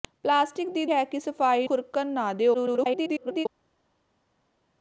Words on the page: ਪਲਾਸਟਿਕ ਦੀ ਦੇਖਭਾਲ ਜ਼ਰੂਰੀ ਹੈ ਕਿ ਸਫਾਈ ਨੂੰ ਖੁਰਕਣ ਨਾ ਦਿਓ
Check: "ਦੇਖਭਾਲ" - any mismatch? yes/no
yes